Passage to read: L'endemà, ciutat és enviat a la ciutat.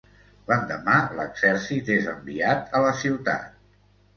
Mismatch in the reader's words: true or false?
true